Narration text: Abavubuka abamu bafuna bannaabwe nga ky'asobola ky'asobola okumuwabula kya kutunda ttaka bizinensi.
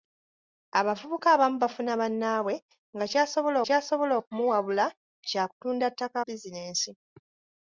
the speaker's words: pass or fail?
pass